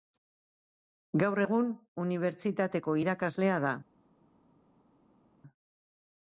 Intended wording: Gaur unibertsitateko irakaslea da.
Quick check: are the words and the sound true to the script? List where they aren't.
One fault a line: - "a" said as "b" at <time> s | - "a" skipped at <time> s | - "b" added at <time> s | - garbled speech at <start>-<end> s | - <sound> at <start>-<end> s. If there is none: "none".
- "egun" added at 1.4 s